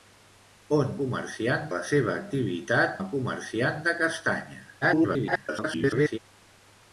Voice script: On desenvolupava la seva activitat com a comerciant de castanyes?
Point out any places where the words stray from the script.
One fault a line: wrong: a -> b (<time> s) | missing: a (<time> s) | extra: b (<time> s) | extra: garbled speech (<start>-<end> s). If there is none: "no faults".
wrong: desenvolupava -> comerciant (1.0 s)
missing: com (3.0 s)
extra: garbled speech (4.8-6.2 s)